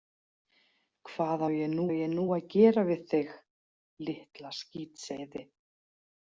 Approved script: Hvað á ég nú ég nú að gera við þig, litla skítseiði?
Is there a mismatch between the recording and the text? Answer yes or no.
no